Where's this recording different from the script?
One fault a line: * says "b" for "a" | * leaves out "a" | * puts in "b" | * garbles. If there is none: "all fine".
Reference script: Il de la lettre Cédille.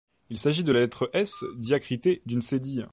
* puts in "s'agit"
* puts in "S diacritée d'une"